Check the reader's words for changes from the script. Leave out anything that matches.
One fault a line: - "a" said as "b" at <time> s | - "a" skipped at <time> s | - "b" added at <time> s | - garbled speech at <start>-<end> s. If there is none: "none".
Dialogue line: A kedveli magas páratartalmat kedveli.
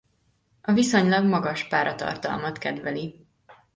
- "kedveli" said as "viszonylag" at 0.7 s